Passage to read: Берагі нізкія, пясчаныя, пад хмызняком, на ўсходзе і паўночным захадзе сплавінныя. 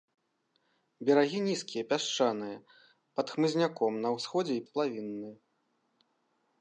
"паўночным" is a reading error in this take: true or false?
true